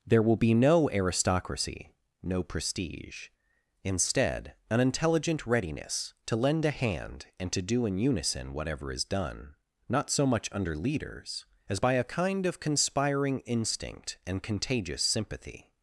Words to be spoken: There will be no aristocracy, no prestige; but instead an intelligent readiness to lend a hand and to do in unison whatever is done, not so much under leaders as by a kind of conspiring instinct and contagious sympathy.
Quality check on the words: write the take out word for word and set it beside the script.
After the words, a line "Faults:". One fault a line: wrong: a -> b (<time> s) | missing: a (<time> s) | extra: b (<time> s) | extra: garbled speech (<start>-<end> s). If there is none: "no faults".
There will be no aristocracy, no prestige; instead an intelligent readiness to lend a hand and to do in unison whatever is done, not so much under leaders as by a kind of conspiring instinct and contagious sympathy.
Faults:
missing: but (3.3 s)